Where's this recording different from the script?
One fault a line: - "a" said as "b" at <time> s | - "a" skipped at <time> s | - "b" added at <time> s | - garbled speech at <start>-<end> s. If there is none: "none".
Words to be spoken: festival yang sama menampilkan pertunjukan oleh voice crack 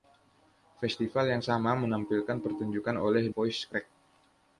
none